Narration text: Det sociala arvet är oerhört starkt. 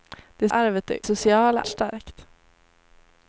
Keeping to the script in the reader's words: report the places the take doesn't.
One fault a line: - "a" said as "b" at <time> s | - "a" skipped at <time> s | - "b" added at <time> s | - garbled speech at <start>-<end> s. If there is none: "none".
- "sociala" skipped at 0.5 s
- "oerhört" said as "sociala" at 1.0 s